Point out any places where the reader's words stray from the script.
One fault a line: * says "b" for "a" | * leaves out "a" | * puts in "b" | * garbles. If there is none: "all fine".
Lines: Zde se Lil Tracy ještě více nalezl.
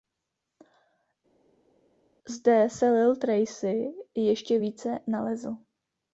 all fine